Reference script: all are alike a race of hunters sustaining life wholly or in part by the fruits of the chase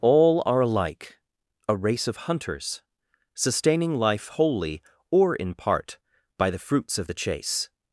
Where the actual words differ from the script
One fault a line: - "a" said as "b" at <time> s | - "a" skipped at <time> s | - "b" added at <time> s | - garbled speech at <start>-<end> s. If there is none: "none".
none